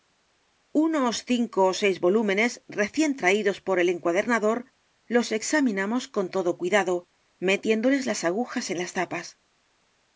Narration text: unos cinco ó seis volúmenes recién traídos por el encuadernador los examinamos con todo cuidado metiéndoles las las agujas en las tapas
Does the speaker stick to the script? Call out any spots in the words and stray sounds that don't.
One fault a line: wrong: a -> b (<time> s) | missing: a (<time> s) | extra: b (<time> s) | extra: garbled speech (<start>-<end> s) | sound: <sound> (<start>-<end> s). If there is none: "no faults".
missing: las (8.2 s)